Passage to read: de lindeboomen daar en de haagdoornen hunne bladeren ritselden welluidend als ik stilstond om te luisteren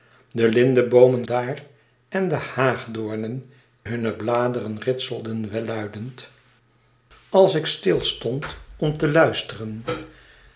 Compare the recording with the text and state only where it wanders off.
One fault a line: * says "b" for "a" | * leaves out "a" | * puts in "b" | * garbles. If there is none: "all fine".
all fine